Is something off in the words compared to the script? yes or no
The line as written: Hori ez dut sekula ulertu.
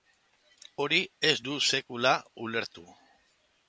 no